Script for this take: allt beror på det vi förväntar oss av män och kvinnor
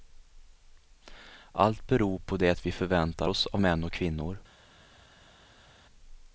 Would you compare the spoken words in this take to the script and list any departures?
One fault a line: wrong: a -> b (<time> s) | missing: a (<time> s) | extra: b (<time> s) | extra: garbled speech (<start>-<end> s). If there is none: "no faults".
no faults